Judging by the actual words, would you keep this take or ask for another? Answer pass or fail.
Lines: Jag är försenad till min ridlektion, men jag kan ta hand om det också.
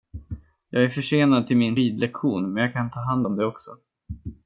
pass